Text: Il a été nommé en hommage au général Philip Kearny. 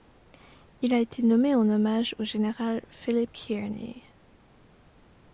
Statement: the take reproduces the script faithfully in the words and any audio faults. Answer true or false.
true